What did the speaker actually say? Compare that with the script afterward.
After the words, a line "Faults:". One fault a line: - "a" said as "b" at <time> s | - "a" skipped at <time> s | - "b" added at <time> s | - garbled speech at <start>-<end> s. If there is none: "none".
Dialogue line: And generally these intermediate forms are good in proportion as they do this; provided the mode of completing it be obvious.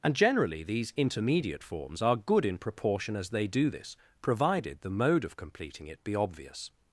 And generally these intermediate forms are good in proportion as they do this; provided the mode of completing it be obvious.
Faults:
none